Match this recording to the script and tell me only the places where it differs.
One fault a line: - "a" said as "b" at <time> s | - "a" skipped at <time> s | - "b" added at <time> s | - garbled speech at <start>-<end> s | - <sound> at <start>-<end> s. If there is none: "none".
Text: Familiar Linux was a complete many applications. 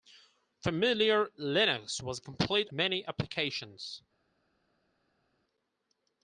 none